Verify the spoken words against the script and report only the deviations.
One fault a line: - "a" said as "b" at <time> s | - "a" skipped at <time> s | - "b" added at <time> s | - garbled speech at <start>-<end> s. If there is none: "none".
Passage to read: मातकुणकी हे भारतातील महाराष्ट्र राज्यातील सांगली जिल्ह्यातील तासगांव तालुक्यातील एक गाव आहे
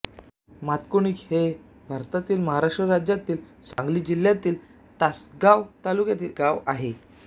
- "एक" skipped at 6.3 s